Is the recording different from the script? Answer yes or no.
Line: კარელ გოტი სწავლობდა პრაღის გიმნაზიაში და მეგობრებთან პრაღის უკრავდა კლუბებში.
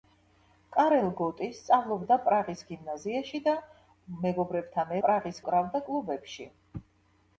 no